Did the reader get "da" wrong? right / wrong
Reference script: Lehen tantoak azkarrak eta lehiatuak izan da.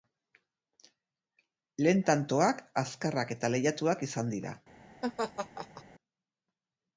wrong